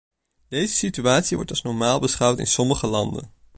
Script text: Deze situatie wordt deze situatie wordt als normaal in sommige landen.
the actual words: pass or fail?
fail